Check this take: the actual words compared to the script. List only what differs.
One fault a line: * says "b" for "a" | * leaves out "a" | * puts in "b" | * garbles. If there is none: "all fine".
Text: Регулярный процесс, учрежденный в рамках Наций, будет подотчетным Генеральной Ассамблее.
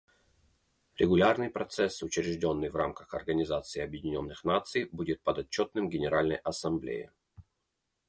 * puts in "Организации Объединенных"